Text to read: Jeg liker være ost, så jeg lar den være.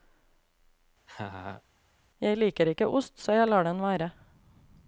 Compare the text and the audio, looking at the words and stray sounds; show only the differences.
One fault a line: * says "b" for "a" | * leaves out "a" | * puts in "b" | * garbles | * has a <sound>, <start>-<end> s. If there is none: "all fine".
* has a laugh, 1.1-1.6 s
* says "ikke" for "være"